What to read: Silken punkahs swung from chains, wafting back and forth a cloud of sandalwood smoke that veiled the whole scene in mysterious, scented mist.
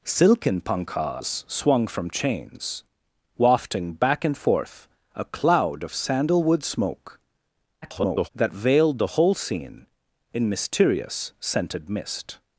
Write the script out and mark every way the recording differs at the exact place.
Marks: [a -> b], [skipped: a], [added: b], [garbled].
Silken punkahs swung from chains, wafting back and forth a cloud of sandalwood smoke [garbled] that veiled the whole scene in mysterious, scented mist.